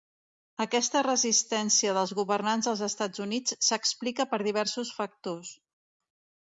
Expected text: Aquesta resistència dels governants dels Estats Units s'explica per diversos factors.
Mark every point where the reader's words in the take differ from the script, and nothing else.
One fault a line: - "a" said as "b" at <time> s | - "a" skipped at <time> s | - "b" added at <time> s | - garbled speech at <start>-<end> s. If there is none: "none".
none